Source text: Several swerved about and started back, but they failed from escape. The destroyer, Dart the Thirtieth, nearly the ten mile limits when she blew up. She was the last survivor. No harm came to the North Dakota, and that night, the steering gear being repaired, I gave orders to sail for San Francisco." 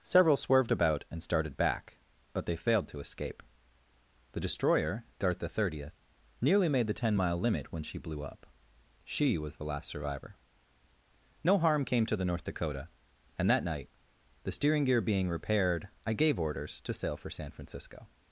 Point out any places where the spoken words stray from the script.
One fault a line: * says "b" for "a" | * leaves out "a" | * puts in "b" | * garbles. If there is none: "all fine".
* says "to" for "from"
* puts in "made"
* says "limit" for "limits"